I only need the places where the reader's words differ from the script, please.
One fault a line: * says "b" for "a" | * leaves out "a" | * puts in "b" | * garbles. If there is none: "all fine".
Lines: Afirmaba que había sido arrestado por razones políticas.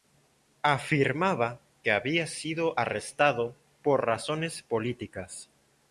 all fine